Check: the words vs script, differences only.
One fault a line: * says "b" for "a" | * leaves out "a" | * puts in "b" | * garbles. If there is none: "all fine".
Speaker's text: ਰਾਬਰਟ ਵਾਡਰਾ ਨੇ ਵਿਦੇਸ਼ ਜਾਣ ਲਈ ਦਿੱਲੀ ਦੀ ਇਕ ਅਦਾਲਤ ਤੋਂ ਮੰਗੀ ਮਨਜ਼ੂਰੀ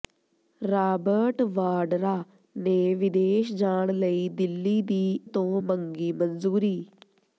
* leaves out "ਇਕ ਅਦਾਲਤ"